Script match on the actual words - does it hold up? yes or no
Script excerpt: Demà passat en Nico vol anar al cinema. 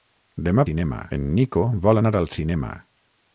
no